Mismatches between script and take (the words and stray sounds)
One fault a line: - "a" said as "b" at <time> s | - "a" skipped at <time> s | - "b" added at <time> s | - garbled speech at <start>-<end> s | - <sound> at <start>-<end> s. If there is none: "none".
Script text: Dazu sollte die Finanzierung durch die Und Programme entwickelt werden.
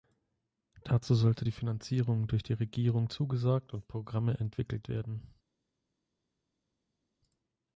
- "Regierung zugesagt" added at 2.5 s